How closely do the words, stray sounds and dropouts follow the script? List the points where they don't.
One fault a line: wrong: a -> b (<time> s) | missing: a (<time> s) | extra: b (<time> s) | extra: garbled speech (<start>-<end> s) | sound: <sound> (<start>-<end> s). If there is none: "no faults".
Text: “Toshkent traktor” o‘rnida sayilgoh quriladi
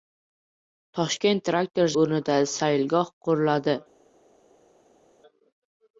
no faults